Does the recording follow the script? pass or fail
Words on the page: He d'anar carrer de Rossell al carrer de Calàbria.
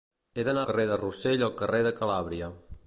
pass